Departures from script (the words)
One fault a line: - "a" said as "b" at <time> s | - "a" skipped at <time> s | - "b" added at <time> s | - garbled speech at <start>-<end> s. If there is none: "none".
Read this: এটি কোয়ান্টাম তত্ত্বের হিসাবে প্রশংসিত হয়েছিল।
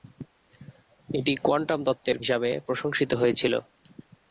none